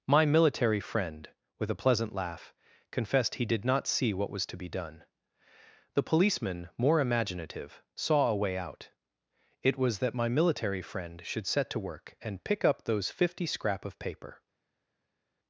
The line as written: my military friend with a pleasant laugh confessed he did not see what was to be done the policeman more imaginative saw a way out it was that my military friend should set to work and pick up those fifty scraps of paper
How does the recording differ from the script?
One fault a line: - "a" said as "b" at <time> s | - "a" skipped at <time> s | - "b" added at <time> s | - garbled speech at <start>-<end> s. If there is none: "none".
- "scraps" said as "scrap" at 13.4 s